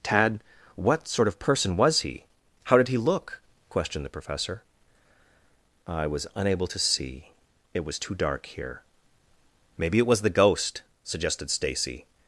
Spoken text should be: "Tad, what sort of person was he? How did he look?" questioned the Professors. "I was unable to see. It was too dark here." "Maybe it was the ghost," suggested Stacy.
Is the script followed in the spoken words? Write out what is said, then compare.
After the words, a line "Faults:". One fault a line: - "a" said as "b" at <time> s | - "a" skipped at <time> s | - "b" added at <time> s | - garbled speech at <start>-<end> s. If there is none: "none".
"Tad, what sort of person was he? How did he look?" questioned the Professor. "I was unable to see. It was too dark here." "Maybe it was the ghost," suggested Stacy.
Faults:
- "Professors" said as "Professor" at 4.2 s